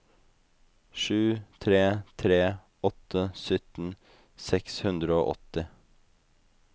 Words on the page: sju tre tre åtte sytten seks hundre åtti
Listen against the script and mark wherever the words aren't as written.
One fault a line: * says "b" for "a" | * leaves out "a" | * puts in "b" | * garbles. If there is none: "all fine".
* puts in "og"